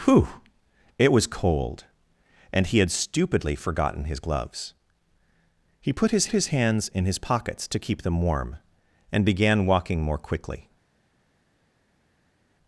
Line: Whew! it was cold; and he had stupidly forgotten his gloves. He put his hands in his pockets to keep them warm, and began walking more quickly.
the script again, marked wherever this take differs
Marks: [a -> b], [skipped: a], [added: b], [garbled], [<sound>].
Whew! it was cold; and he had stupidly forgotten his gloves. He put his [added: his] hands in his pockets to keep them warm, and began walking more quickly.